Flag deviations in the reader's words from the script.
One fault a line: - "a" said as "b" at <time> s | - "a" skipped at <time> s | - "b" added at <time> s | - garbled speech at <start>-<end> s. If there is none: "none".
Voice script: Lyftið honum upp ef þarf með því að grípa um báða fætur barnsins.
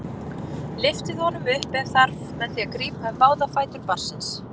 none